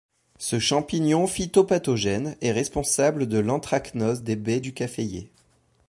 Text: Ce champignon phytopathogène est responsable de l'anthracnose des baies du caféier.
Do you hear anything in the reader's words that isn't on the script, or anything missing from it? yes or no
no